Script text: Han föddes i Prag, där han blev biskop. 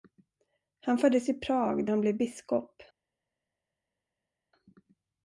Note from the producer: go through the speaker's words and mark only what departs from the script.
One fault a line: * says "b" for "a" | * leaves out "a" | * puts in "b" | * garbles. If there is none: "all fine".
* leaves out "där"